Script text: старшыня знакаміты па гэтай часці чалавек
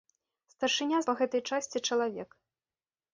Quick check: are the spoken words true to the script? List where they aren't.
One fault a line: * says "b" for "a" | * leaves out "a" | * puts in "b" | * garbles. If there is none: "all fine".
* leaves out "знакаміты"